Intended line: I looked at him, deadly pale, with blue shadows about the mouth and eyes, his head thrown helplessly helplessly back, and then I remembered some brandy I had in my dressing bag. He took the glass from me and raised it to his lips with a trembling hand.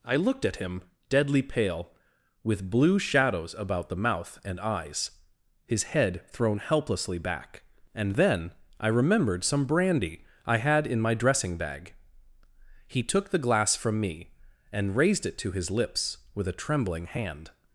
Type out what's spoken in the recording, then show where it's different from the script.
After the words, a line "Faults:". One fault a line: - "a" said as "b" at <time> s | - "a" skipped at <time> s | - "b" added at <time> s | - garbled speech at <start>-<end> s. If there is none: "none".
I looked at him, deadly pale, with blue shadows about the mouth and eyes, his head thrown helplessly back, and then I remembered some brandy I had in my dressing bag. He took the glass from me and raised it to his lips with a trembling hand.
Faults:
- "helplessly" skipped at 7.2 s